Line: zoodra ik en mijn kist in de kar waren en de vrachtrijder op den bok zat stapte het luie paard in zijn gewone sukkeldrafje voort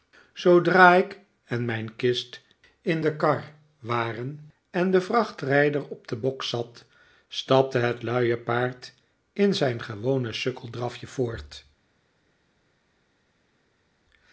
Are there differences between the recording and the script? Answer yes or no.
no